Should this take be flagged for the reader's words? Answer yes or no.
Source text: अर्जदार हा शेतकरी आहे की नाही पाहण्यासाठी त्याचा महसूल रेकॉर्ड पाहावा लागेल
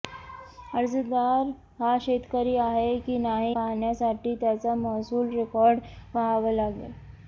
no